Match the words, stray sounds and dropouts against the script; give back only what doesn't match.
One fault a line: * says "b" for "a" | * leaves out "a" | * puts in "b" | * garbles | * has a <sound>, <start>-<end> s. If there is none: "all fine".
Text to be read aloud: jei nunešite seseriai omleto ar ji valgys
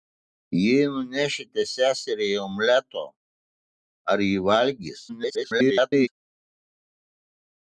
* garbles